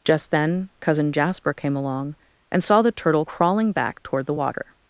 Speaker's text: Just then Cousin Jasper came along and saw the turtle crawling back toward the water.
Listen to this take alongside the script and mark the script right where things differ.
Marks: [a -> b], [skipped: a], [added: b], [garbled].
Just then Cousin Jasper came along and saw the turtle crawling back toward the water.